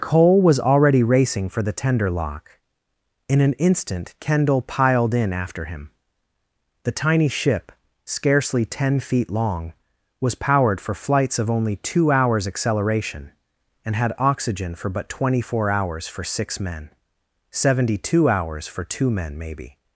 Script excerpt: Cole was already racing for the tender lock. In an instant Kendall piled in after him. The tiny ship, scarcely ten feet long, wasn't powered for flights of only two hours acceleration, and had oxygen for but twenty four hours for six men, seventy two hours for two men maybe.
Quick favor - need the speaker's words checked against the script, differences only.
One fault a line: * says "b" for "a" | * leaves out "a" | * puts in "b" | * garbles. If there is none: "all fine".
* says "was" for "wasn't"